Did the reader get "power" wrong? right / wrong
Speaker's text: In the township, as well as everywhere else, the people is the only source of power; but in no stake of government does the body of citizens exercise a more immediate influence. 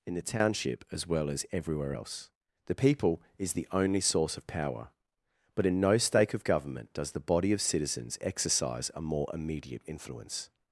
right